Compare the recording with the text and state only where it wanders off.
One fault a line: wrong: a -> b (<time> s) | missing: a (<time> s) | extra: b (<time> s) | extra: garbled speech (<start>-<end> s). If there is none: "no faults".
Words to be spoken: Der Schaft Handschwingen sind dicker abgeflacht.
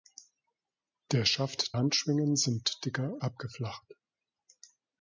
no faults